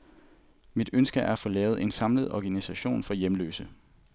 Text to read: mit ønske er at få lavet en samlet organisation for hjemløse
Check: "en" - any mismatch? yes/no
no